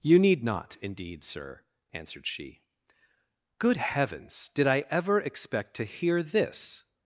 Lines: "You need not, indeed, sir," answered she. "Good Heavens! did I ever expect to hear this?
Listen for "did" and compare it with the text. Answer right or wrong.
right